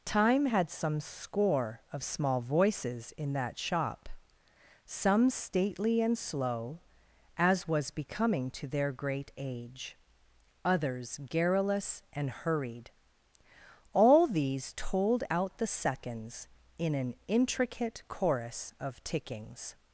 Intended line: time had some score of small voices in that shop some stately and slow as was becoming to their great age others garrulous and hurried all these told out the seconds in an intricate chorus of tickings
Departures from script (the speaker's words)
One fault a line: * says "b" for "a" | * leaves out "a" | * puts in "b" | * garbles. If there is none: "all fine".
all fine